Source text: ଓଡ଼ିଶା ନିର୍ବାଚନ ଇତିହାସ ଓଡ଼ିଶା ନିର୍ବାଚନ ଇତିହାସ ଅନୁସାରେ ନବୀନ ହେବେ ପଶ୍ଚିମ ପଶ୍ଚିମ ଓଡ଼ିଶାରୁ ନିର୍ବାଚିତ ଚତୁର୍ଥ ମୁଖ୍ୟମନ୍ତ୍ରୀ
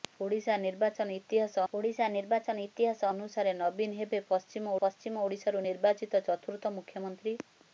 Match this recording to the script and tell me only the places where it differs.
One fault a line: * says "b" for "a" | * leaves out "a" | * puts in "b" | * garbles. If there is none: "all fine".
all fine